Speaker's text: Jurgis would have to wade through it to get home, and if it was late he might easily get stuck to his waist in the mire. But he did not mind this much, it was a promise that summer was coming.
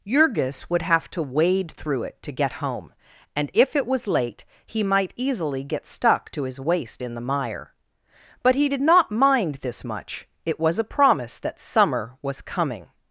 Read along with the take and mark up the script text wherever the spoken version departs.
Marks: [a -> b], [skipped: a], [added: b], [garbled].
Jurgis would have to wade through it to get home, and if it was late he might easily get stuck to his waist in the mire. But he did not mind this much, it was a promise that summer was coming.